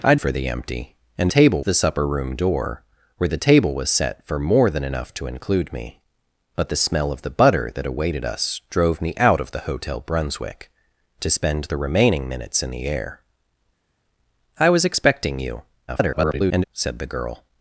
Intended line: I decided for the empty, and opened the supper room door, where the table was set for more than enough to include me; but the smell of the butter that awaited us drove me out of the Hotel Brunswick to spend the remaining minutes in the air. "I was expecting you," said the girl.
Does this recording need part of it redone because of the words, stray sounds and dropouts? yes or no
yes